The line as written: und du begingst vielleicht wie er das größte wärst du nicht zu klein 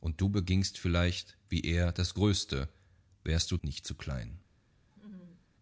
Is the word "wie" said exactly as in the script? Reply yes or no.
yes